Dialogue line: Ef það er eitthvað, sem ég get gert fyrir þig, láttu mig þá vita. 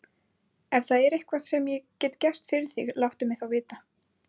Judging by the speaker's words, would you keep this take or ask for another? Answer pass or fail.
pass